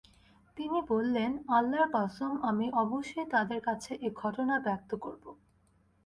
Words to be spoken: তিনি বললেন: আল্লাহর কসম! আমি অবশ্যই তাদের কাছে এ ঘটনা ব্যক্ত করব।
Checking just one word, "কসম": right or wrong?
right